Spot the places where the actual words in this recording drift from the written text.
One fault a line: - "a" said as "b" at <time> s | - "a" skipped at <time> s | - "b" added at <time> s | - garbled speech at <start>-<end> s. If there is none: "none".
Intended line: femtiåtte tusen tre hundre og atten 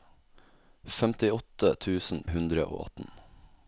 - "tre" skipped at 2.2 s